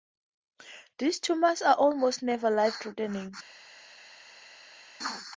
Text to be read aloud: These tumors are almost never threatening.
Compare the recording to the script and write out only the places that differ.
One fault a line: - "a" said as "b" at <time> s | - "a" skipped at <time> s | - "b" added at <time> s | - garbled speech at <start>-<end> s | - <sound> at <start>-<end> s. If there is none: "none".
- "life" added at 2.5 s